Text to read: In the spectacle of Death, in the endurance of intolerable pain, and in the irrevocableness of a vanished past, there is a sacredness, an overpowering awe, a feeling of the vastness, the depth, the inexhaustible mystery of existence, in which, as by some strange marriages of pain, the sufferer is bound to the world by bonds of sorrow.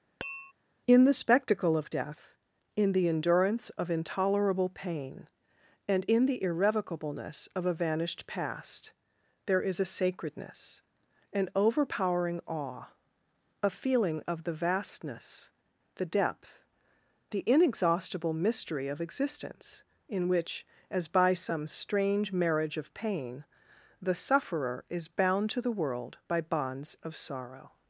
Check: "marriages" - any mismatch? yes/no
yes